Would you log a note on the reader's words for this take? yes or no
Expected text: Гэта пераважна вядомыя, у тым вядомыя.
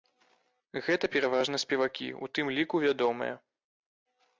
yes